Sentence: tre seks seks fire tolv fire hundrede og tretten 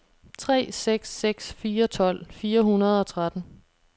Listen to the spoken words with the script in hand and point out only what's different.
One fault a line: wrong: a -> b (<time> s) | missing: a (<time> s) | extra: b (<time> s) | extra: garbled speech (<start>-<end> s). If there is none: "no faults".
no faults